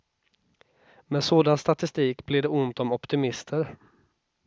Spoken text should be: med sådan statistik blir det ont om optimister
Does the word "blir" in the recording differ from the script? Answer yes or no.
no